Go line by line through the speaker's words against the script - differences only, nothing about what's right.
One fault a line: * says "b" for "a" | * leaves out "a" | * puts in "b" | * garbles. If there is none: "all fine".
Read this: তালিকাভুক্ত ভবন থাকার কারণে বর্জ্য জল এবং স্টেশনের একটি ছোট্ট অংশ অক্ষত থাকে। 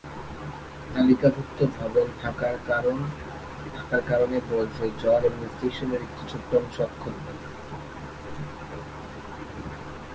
all fine